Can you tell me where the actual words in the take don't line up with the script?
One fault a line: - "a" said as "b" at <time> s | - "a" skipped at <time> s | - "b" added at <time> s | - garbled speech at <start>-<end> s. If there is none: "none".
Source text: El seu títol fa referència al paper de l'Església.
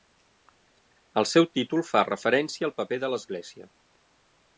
none